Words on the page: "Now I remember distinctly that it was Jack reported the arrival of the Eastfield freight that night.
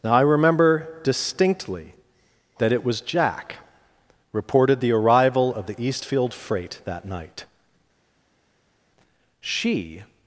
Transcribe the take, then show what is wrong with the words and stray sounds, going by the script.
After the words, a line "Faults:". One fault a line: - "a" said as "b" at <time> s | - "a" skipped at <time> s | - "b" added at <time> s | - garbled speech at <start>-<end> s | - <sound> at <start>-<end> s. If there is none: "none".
"Now I remember distinctly that it was Jack reported the arrival of the Eastfield freight that night. She
Faults:
- "She" added at 9.4 s